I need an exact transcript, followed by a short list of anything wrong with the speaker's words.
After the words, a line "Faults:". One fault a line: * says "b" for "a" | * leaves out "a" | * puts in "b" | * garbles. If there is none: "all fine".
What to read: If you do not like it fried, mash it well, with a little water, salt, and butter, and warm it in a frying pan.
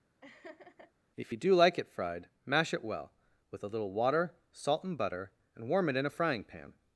If you do like it fried, mash it well, with a little water, salt, and butter, and warm it in a frying pan.
Faults:
* leaves out "not"